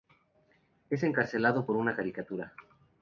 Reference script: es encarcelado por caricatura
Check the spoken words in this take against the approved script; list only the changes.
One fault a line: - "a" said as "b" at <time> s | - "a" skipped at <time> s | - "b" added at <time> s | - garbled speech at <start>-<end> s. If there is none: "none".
- "una" added at 1.7 s